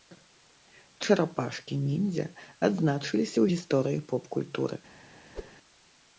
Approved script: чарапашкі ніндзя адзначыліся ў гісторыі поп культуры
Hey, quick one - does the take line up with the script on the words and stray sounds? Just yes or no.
no